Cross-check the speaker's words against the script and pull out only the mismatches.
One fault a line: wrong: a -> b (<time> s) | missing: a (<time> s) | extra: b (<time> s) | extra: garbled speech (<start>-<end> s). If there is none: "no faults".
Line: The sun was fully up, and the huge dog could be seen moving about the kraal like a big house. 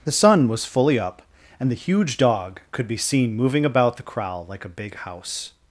no faults